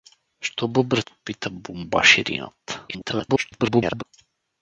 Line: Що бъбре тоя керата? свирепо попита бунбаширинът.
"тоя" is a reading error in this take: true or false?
true